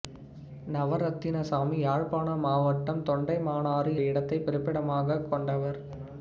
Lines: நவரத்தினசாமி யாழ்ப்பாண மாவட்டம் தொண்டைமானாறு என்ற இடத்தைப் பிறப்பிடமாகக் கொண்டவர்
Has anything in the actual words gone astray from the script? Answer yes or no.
yes